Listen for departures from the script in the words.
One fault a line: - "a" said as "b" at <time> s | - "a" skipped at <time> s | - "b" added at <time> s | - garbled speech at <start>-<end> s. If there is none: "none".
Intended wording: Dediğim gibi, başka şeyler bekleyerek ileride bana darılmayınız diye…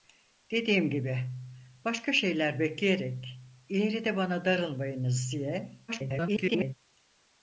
- garbled speech at 5.9-6.7 s